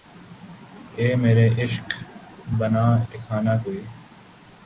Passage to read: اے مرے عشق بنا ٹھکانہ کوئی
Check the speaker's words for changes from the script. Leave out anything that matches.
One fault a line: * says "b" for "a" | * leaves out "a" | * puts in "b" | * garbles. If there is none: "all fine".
all fine